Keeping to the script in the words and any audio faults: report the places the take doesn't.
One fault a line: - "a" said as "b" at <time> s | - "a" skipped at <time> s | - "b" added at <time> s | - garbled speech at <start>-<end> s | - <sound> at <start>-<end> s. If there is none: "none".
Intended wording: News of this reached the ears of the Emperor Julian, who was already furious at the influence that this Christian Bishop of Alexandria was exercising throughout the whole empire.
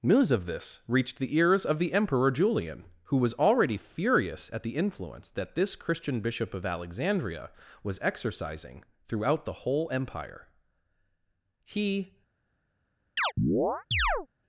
- "He" added at 11.6 s
- chirp at 13.2-14.3 s